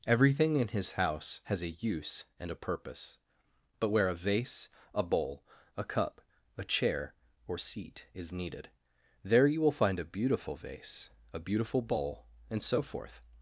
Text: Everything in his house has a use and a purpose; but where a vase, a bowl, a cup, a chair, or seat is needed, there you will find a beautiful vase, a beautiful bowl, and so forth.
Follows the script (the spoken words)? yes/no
yes